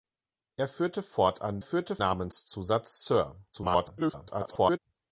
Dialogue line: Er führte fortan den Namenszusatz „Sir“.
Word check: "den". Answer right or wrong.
wrong